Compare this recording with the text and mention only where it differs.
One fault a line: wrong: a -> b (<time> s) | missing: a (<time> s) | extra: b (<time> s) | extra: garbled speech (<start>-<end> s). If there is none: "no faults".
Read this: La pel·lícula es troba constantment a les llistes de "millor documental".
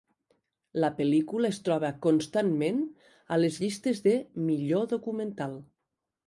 no faults